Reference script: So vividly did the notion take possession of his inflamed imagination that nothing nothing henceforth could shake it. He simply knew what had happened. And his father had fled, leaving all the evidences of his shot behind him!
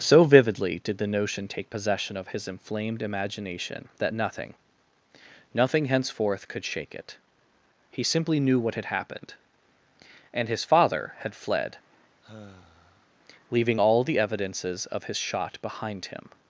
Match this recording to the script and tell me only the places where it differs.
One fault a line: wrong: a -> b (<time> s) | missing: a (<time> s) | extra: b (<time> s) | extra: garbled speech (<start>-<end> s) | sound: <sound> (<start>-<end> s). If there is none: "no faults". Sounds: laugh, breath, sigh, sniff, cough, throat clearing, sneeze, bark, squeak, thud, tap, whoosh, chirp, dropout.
sound: sigh (12.2-13.1 s)